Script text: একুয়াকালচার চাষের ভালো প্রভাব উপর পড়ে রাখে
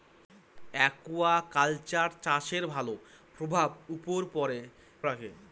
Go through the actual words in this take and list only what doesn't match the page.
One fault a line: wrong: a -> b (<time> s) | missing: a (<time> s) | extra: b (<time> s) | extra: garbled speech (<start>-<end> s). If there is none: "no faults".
no faults